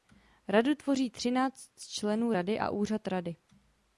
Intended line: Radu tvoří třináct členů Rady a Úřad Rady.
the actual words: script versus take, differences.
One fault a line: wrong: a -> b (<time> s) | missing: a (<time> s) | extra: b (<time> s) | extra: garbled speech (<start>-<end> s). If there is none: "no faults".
no faults